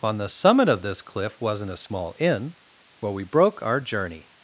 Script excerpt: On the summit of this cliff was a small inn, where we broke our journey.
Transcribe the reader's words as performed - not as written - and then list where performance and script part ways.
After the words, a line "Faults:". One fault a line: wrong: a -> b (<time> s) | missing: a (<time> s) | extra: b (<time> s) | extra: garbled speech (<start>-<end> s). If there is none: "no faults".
On the summit of this cliff wasn't a small inn, where we broke our journey.
Faults:
wrong: was -> wasn't (1.4 s)